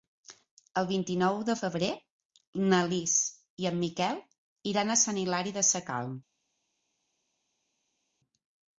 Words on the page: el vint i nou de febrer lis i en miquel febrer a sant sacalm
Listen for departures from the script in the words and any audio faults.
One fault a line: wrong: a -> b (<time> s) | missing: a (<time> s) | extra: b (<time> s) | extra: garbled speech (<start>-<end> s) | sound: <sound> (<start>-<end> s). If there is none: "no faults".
extra: na (2.7 s)
wrong: febrer -> iran (4.7 s)
extra: hilari (5.2 s)